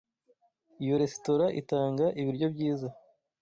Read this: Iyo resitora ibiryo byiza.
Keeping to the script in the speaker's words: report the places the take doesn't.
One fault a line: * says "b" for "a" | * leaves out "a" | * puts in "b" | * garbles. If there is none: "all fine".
* puts in "itanga"